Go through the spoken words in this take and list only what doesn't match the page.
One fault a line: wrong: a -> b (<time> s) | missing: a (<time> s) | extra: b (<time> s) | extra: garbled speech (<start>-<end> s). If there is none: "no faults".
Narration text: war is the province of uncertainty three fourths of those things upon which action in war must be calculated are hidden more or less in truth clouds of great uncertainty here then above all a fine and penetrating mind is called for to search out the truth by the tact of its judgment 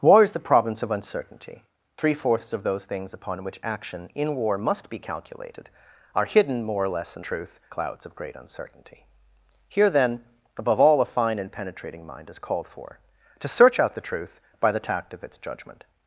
no faults